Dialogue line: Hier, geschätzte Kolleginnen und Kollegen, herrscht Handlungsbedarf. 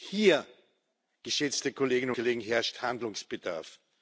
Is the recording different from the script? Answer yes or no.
yes